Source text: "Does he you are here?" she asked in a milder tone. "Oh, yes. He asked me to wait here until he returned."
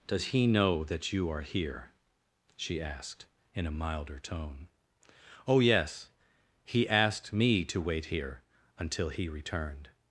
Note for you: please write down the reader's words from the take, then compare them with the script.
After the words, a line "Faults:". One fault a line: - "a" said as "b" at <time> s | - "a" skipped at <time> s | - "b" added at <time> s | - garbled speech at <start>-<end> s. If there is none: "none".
"Does he know that you are here?" she asked in a milder tone. "Oh, yes. He asked me to wait here until he returned."
Faults:
- "know that" added at 0.5 s